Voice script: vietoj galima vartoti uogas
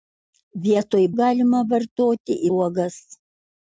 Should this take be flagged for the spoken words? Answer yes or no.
no